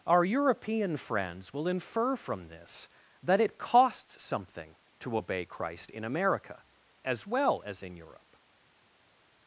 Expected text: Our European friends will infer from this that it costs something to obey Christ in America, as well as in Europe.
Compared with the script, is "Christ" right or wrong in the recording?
right